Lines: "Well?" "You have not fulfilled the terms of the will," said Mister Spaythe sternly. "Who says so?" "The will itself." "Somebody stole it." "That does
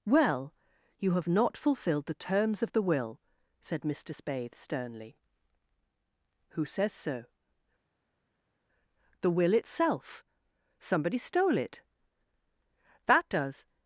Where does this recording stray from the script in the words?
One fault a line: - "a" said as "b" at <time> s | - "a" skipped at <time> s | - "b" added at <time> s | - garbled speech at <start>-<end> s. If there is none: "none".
none